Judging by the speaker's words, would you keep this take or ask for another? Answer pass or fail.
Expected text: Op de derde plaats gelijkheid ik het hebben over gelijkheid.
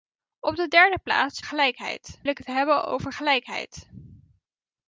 pass